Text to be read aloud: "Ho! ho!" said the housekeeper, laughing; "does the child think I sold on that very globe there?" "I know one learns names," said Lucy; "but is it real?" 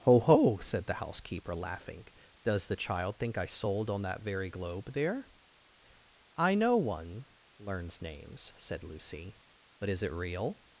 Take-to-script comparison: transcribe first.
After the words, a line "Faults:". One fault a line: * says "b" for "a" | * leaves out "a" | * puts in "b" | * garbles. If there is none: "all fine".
"Ho! ho!" said the housekeeper, laughing; "does the child think I sold on that very globe there?" "I know one learns names," said Lucy; "but is it real?"
Faults:
all fine